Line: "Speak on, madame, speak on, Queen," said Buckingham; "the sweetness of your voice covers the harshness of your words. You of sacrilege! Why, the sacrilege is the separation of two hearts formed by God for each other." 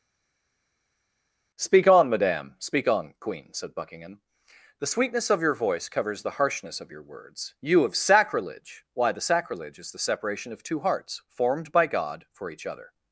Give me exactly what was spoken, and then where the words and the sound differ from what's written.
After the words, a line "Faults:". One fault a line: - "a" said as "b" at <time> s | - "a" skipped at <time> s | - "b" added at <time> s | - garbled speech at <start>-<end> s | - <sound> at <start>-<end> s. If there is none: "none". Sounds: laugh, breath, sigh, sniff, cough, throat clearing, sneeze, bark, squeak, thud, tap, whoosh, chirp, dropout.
"Speak on, madame, speak on, Queen," said Buckingham; "the sweetness of your voice covers the harshness of your words. You of sacrilege! Why, the sacrilege is the separation of two hearts formed by God for each other."
Faults:
none